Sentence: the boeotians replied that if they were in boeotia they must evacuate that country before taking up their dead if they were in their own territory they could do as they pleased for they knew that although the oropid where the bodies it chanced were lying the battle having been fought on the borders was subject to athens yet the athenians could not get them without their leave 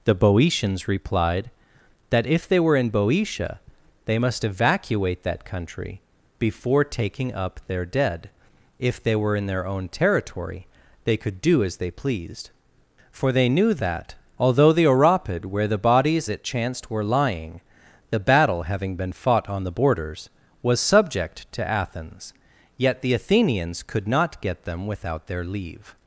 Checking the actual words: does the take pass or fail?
pass